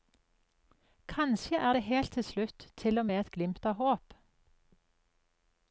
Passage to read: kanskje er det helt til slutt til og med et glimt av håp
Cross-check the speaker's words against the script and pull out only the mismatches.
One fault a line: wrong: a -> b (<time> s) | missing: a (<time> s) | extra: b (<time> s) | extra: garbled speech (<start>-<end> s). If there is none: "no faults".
no faults